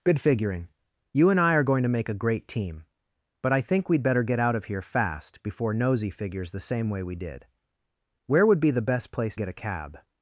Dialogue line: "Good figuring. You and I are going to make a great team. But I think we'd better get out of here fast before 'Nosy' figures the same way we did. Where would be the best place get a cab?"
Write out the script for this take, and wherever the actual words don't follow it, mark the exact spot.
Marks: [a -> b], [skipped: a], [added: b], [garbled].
"Good figuring. You and I are going to make a great team. But I think we'd better get out of here fast before 'Nosy' figures the same way we did. Where would be the best place get a cab?"